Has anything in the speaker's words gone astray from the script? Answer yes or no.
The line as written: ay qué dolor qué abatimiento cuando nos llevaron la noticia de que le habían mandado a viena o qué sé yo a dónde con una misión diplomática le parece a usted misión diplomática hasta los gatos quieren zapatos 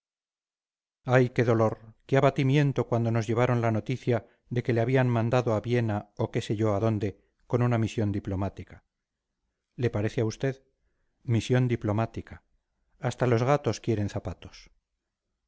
no